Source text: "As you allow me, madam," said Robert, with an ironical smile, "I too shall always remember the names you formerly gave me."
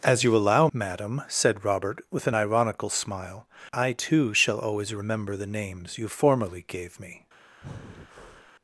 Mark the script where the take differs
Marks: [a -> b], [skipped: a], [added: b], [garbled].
"As you allow [skipped: me,] madam," said Robert, with an ironical smile, "I too shall always remember the names you formerly gave me."